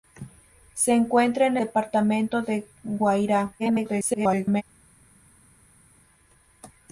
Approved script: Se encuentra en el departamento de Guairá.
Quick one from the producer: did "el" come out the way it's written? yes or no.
no